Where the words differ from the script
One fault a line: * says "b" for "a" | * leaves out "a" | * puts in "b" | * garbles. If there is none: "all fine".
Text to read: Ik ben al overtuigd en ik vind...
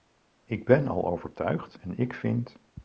all fine